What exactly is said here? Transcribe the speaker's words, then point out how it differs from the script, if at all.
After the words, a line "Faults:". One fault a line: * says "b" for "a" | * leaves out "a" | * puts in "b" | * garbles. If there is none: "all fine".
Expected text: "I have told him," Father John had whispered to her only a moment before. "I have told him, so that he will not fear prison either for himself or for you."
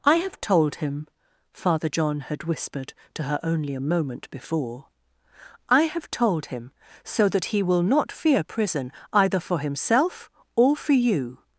"I have told him," Father John had whispered to her only a moment before. "I have told him, so that he will not fear prison either for himself or for you."
Faults:
all fine